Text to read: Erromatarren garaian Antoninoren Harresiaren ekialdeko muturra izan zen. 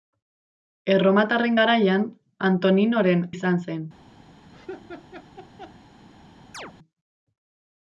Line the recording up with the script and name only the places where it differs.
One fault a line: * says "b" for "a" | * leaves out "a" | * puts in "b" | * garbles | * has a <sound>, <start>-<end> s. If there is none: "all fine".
* leaves out "Harresiaren ekialdeko muturra"
* has a laugh, 4.5-5.8 s
* has a chirp, 6.5-6.7 s